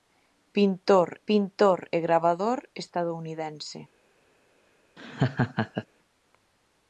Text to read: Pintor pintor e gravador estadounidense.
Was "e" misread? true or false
false